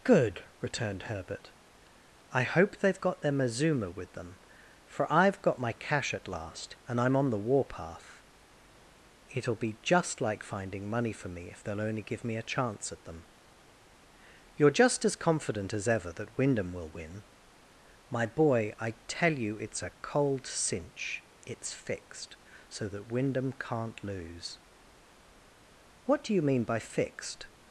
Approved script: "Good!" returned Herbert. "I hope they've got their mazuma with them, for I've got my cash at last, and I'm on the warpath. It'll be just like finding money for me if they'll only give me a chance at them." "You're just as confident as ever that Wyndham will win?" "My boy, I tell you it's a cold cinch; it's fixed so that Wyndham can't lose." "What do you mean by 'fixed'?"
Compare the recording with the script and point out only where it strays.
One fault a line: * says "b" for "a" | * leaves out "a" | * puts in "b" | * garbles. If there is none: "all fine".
all fine